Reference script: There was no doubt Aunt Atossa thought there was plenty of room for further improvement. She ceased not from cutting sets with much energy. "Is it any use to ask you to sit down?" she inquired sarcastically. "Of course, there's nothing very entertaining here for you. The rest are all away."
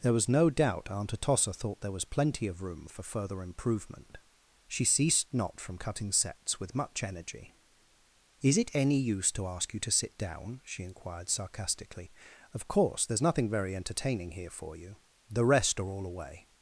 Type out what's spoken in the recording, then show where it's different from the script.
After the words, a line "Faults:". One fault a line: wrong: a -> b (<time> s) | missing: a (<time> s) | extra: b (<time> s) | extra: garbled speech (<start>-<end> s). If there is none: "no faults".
There was no doubt Aunt Atossa thought there was plenty of room for further improvement. She ceased not from cutting sets with much energy. "Is it any use to ask you to sit down?" she inquired sarcastically. "Of course, there's nothing very entertaining here for you. The rest are all away."
Faults:
no faults